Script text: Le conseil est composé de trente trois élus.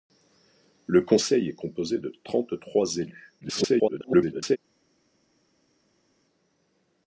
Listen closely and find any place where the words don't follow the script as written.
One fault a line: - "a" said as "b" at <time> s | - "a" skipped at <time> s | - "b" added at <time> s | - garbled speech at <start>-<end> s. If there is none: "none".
- garbled speech at 3.4-4.6 s